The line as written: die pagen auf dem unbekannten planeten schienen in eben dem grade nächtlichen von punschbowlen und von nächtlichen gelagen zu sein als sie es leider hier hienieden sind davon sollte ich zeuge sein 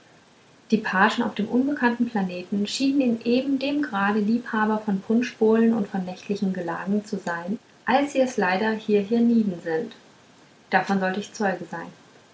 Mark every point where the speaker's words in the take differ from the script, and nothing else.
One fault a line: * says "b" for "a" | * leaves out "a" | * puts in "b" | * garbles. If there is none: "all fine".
* says "liebhaber" for "nächtlichen"